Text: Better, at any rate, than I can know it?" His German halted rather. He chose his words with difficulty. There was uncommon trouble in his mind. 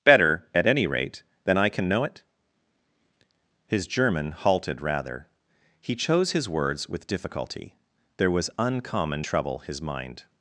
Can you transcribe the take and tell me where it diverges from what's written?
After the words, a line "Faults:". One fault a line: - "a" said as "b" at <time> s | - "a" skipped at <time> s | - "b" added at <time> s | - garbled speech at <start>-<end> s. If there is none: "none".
Better, at any rate, than I can know it?" His German halted rather. He chose his words with difficulty. There was uncommon trouble his mind.
Faults:
- "in" skipped at 9.6 s